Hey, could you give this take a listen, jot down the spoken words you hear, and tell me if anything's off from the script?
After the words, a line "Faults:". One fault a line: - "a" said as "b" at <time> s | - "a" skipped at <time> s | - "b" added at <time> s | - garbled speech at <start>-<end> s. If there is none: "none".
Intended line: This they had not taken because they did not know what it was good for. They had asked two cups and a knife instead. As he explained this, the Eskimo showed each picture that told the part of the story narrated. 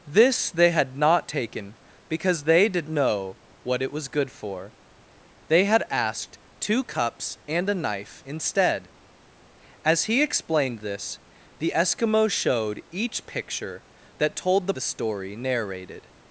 This they had not taken because they did know what it was good for. They had asked two cups and a knife instead. As he explained this, the Eskimo showed each picture that told the the story narrated.
Faults:
- "not" skipped at 2.9 s
- "part of" skipped at 14.7 s